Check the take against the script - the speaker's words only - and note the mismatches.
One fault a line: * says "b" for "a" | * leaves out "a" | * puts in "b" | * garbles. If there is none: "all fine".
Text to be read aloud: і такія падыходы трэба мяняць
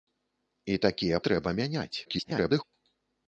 * leaves out "падыходы"
* garbles